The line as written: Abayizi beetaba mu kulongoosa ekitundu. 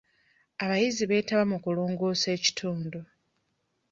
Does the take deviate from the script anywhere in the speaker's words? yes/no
no